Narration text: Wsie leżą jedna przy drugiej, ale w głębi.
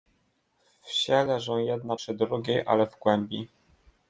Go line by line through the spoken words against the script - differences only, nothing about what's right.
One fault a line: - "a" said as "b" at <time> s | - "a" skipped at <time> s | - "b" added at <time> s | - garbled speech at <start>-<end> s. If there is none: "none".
none